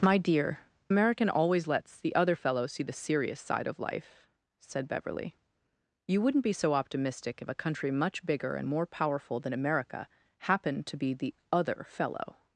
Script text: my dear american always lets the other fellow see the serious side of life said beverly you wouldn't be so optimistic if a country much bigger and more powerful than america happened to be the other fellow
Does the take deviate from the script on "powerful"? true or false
false